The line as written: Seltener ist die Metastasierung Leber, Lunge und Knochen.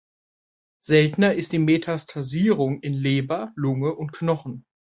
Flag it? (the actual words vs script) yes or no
yes